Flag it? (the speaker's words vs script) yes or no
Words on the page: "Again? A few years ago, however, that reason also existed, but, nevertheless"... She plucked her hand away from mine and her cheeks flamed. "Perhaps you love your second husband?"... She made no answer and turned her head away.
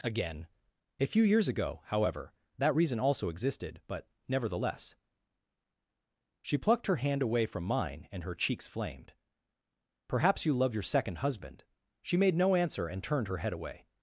no